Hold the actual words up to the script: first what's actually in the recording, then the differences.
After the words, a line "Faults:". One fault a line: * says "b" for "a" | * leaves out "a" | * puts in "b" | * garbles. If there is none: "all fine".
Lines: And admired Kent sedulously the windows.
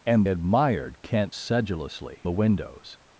And admired Kent sedulously the windows.
Faults:
all fine